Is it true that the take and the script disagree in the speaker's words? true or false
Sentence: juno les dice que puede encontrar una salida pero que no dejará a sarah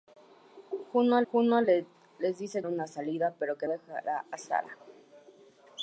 true